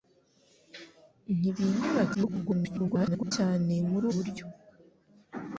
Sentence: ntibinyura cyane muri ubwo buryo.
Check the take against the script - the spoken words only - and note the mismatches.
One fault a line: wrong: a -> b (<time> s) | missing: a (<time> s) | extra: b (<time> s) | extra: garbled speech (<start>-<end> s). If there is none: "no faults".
extra: garbled speech (2.1-3.3 s)
missing: ubwo (4.1 s)